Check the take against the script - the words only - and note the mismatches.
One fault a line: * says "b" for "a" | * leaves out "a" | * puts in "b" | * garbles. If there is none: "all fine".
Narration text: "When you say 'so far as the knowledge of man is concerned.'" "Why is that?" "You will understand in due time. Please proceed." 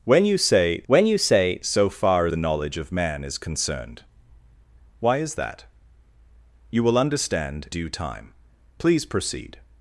* puts in "when you say"
* leaves out "as"
* leaves out "in"